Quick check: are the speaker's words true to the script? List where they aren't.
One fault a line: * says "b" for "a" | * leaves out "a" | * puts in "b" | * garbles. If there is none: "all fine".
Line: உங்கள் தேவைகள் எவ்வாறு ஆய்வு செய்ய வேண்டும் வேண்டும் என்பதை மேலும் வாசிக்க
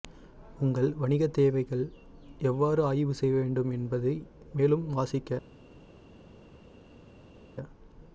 * puts in "வணிக"
* leaves out "வேண்டும்"